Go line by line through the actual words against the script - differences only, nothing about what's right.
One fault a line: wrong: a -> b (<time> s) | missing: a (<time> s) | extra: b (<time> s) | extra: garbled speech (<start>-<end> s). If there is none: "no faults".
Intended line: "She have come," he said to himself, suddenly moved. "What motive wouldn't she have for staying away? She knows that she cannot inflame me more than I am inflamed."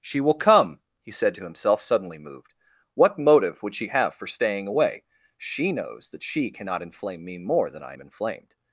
wrong: have -> will (0.2 s)
wrong: wouldn't -> would (3.6 s)